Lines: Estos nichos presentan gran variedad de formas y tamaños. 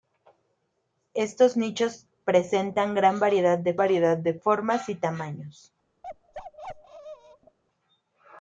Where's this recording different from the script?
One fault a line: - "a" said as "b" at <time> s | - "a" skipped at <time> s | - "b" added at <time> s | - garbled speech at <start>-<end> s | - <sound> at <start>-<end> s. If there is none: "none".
- "variedad de" added at 3.8 s
- bark at 6.0-7.6 s